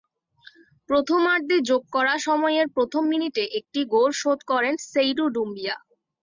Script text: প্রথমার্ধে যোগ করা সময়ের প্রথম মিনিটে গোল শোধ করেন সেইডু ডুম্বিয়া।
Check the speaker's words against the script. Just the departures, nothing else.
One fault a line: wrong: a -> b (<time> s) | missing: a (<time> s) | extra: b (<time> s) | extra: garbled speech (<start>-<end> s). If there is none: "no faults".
extra: একটি (3.6 s)